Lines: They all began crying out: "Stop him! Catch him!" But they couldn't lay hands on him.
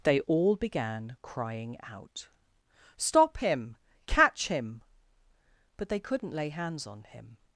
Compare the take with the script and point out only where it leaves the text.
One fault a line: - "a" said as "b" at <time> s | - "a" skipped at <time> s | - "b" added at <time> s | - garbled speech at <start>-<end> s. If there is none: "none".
none